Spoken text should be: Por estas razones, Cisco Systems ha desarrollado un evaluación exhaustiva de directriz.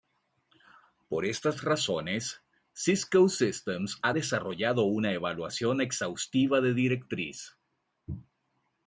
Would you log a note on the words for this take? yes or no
yes